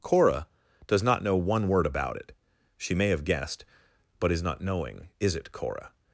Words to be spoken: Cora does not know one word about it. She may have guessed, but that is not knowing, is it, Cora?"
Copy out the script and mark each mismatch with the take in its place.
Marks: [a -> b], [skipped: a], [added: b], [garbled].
Cora does not know one word about it. She may have guessed, but [skipped: that] is not knowing, is it, Cora?"